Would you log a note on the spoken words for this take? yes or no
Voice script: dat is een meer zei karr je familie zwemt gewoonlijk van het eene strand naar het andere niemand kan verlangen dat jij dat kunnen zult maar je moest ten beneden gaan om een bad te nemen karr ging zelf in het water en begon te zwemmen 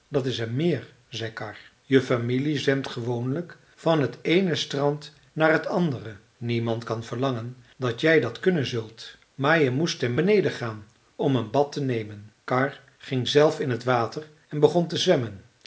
no